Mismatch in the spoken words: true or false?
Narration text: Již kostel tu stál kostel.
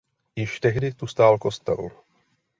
true